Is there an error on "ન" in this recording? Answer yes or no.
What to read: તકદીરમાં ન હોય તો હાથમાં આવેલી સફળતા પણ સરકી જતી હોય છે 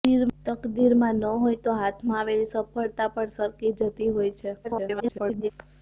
no